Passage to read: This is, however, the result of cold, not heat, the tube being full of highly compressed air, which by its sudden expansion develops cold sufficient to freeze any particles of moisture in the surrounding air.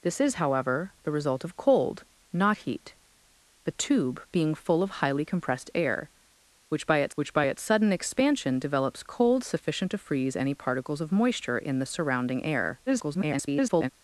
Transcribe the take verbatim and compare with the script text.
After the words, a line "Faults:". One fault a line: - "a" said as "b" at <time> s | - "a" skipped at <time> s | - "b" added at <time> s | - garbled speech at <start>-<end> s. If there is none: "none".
This is, however, the result of cold, not heat, the tube being full of highly compressed air, which by its which by its sudden expansion develops cold sufficient to freeze any particles of moisture in the surrounding air. [garbled]
Faults:
- "which by its" added at 7.2 s
- garbled speech at 12.9-13.9 s